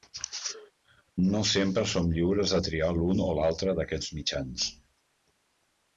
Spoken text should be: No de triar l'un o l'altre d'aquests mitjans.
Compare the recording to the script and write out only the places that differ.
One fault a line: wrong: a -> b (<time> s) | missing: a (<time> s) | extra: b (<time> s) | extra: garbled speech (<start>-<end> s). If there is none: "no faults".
extra: sempre som lliures (1.5 s)